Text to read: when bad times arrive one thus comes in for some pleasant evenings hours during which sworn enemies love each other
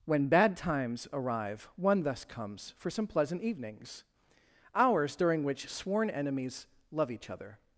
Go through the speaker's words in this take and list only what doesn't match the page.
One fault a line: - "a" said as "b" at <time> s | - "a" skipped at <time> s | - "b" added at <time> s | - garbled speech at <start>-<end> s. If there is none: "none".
- "in" skipped at 2.7 s